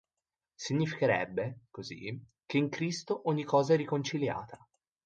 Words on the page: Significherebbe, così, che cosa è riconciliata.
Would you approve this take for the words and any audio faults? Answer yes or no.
no